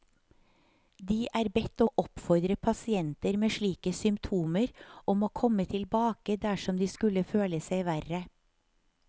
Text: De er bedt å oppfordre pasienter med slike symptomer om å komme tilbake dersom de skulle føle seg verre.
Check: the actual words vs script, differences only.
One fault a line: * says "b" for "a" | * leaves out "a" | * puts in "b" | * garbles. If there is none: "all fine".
all fine